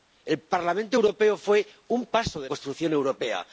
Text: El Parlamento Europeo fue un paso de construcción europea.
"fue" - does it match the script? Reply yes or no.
yes